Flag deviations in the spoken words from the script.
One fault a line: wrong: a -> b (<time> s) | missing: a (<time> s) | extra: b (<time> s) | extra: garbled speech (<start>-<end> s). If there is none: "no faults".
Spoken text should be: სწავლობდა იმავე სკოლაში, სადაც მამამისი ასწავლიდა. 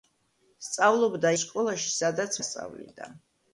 missing: იმავე (1.3 s)
missing: მამამისი (2.4 s)